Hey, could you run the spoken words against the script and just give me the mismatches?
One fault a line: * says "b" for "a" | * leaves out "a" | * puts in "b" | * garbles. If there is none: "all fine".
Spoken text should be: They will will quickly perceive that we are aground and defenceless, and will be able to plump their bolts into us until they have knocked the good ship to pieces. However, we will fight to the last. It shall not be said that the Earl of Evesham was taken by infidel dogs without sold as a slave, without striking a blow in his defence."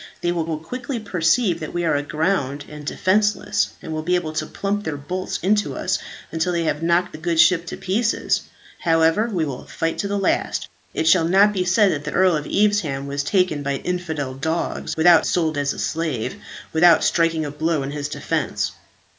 all fine